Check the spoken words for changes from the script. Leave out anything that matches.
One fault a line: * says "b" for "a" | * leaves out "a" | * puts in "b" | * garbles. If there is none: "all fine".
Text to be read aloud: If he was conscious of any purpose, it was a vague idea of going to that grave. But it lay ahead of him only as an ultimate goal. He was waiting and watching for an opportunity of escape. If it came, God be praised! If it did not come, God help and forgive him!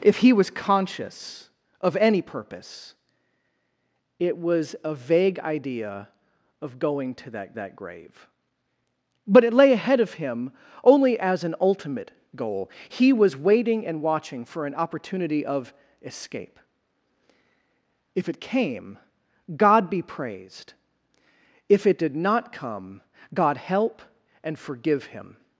* puts in "that"